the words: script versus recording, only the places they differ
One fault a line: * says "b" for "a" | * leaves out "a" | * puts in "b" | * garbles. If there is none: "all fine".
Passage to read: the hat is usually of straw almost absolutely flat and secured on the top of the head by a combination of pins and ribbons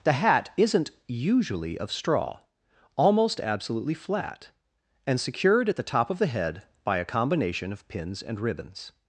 * says "isn't" for "is"
* says "at" for "on"